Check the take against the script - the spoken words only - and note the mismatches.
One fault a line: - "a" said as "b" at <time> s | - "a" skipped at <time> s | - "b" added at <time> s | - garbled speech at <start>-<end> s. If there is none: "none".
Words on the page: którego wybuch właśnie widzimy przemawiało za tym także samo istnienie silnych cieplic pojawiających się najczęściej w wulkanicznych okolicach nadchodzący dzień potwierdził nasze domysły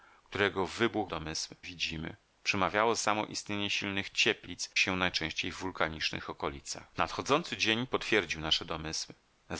- "właśnie" said as "domysły" at 1.1 s
- "za tym także" skipped at 2.9 s
- "pojawiających" skipped at 4.7 s